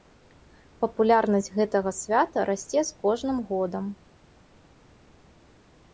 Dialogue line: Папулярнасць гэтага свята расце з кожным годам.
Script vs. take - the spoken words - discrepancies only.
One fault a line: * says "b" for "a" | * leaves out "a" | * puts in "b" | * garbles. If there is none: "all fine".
all fine